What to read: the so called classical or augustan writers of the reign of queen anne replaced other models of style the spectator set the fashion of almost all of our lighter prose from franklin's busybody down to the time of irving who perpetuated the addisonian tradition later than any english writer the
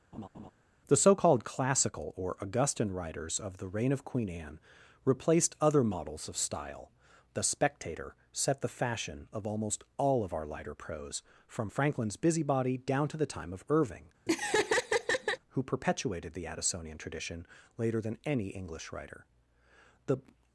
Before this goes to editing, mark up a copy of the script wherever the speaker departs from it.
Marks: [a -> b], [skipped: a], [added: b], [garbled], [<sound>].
[laugh] the so called classical or augustan writers of the reign of queen anne replaced other models of style the spectator set the fashion of almost all of our lighter prose from franklin's busybody down to the time of irving [laugh] who perpetuated the addisonian tradition later than any english writer the